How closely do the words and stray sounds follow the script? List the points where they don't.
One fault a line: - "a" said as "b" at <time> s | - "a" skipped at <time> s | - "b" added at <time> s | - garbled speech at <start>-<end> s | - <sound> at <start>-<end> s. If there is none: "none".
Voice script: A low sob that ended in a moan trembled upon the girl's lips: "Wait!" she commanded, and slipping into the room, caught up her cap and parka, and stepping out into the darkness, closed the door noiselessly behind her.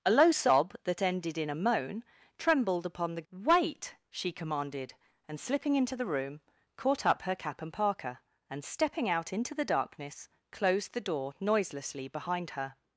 - "girl's lips" skipped at 3.3 s